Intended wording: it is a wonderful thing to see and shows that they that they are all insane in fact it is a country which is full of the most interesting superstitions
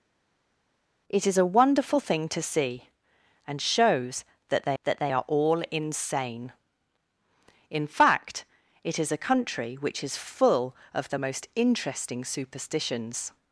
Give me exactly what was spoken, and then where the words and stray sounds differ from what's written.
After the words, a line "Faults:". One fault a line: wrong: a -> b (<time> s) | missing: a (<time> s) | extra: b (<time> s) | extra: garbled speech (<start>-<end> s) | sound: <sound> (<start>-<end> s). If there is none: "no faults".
it is a wonderful thing to see and shows that they that they are all insane in fact it is a country which is full of the most interesting superstitions
Faults:
no faults